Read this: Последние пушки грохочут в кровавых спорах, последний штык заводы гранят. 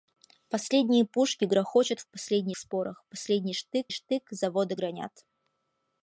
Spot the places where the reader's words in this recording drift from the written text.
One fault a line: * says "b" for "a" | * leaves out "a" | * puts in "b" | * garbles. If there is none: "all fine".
* says "последний" for "кровавых"
* puts in "штык"